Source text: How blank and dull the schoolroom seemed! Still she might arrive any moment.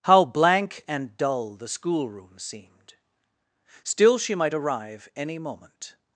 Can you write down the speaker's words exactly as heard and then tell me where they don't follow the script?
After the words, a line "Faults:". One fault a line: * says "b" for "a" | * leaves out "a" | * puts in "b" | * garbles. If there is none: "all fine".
How blank and dull the schoolroom seemed! Still she might arrive any moment.
Faults:
all fine